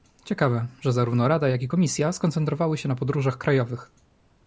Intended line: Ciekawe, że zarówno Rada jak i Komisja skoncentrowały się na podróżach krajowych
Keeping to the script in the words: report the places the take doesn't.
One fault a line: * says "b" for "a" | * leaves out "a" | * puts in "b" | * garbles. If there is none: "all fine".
all fine